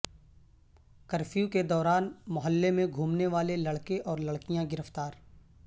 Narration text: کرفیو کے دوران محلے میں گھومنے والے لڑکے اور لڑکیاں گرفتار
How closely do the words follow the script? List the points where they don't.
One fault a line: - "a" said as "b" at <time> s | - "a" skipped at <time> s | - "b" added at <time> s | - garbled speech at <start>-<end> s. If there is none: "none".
none